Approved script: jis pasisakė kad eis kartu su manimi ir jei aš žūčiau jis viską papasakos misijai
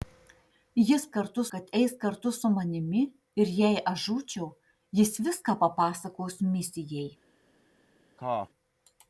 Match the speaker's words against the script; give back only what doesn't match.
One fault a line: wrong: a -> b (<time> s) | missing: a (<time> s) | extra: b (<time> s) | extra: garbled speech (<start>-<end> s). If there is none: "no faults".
wrong: pasisakė -> kartu (1.2 s)